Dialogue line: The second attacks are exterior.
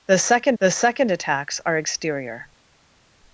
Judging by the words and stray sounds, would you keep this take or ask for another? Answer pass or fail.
fail